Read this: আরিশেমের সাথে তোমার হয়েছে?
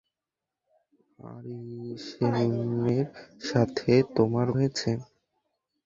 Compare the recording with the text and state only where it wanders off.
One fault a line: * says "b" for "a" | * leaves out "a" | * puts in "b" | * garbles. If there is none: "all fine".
all fine